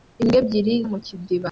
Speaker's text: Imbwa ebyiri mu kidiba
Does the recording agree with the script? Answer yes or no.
yes